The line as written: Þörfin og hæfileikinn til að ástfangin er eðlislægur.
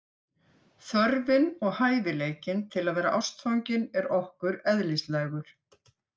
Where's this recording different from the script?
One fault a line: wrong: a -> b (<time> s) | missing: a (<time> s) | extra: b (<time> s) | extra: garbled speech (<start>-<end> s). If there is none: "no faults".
extra: vera (3.0 s)
extra: okkur (4.2 s)